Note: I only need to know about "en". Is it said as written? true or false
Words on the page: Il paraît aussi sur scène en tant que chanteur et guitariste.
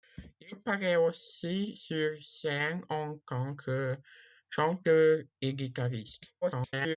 true